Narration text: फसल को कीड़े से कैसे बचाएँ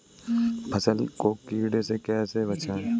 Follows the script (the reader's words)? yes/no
yes